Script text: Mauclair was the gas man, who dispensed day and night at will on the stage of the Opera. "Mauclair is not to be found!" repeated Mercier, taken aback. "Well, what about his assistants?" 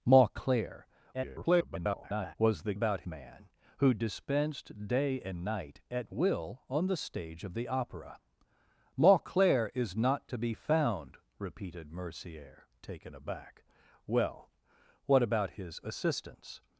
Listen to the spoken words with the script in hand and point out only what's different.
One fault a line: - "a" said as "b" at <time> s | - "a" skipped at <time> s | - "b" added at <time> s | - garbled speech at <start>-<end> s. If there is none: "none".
- garbled speech at 1.1-2.4 s
- "gas" said as "about" at 2.7 s